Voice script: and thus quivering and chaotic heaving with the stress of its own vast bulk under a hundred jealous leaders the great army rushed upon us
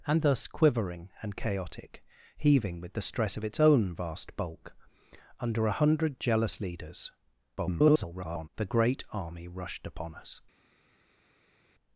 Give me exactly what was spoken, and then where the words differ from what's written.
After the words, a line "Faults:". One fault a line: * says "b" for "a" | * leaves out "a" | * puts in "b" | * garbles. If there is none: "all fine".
and thus quivering and chaotic heaving with the stress of its own vast bulk under a hundred jealous leaders [garbled] the great army rushed upon us
Faults:
* garbles